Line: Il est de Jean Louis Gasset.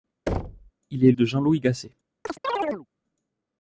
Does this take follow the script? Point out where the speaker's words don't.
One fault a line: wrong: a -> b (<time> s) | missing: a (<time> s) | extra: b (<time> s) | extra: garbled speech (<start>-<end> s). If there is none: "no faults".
no faults